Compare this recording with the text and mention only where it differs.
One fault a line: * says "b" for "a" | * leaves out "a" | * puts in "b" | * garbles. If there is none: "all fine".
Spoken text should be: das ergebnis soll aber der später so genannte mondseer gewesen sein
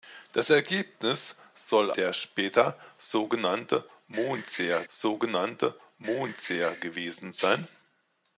* leaves out "aber"
* puts in "so genannte mondseer"